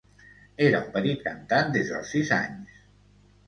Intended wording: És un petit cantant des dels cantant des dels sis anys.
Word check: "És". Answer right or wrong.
wrong